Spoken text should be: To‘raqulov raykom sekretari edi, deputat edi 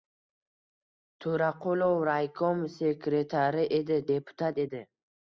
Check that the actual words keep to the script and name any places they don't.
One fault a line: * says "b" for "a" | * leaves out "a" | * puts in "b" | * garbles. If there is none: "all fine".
all fine